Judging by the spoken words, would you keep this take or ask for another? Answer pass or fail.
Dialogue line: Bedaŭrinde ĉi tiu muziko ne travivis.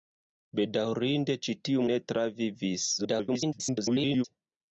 fail